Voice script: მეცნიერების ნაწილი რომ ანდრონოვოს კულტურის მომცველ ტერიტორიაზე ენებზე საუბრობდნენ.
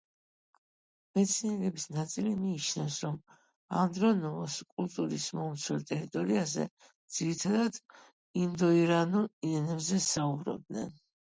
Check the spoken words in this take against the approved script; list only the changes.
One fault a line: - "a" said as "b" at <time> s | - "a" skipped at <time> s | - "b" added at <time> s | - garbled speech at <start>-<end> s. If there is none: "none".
- "მიიჩნევს" added at 2.5 s
- "ძირითადად ინდოირანულ" added at 7.2 s